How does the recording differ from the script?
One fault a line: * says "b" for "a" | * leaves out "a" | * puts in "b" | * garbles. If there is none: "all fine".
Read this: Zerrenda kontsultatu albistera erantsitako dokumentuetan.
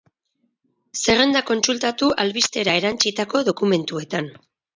all fine